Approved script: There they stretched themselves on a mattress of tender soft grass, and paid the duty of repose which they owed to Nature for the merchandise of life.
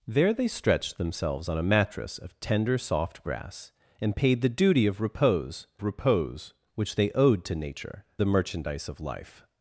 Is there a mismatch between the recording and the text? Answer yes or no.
yes